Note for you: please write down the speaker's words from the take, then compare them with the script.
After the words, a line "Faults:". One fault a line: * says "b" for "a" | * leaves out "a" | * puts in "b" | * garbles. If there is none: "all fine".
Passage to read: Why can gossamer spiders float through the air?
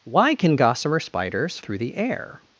Why can gossamer spiders through the air?
Faults:
* leaves out "float"